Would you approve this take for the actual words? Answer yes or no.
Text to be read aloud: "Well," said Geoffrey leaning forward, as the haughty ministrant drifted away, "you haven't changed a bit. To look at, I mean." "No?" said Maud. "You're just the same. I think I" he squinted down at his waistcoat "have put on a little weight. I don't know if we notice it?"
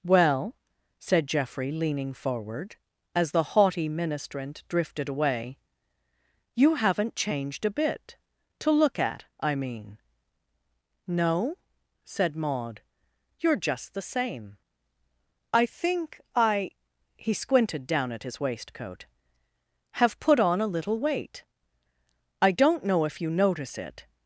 no